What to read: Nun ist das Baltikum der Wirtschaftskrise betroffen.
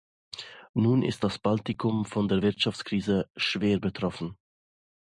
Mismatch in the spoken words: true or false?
true